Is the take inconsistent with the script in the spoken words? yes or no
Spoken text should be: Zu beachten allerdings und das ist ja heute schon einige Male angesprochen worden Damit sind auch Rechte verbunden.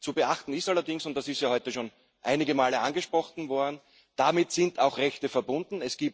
yes